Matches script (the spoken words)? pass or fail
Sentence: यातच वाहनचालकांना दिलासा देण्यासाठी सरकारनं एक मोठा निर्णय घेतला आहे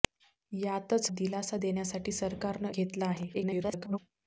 fail